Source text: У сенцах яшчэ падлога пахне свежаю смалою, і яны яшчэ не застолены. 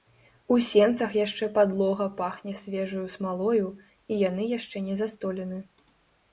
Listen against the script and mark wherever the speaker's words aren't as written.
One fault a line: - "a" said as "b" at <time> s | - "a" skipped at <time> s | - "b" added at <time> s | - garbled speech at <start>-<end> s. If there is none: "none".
none